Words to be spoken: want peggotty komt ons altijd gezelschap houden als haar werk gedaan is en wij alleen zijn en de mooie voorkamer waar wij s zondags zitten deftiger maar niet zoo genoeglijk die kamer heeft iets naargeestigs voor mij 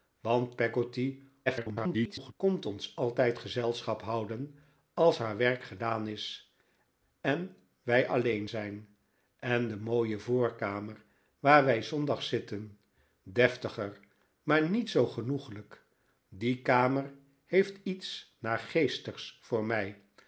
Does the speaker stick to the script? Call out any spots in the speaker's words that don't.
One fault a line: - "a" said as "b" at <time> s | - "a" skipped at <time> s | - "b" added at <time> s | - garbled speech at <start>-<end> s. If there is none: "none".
- garbled speech at 1.5-2.3 s